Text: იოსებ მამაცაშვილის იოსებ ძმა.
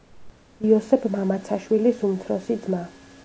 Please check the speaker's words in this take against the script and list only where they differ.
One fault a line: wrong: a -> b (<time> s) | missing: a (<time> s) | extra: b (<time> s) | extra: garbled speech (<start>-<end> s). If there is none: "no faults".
wrong: იოსებ -> უმცროსი (2.1 s)